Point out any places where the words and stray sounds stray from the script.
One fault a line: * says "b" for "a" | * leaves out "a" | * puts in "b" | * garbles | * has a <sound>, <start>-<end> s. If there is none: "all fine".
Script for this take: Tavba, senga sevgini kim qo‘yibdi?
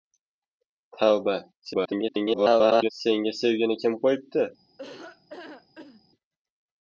* garbles
* has a laugh, 4.8-6.0 s